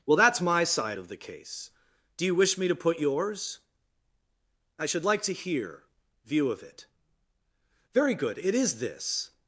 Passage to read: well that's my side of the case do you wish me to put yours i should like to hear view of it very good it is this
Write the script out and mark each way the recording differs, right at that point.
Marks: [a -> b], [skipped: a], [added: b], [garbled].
well that's my side of the case do you wish me to put yours i should like to hear view of it very good it is this